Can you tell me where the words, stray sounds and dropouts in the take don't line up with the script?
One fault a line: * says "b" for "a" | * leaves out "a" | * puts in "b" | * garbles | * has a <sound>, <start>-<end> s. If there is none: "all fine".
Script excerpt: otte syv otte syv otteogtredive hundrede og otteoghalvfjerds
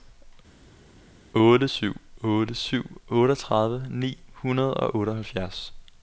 * puts in "ni"